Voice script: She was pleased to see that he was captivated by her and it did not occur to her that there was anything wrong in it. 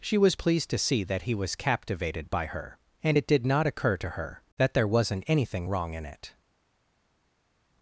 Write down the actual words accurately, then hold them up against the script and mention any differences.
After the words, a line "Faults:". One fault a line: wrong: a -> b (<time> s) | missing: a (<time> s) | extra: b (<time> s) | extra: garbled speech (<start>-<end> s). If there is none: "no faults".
She was pleased to see that he was captivated by her and it did not occur to her that there wasn't anything wrong in it.
Faults:
wrong: was -> wasn't (4.9 s)